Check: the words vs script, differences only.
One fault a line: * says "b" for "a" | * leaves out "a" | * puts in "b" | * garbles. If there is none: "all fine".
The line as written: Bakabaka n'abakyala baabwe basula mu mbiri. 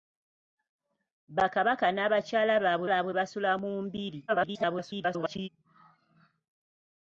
* puts in "baabwe"
* garbles